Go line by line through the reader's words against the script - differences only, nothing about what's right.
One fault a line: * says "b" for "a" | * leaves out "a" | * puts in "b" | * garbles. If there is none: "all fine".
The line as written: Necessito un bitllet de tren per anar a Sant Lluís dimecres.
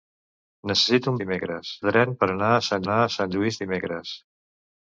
* says "dimecres" for "bitllet"
* puts in "anar a Sant"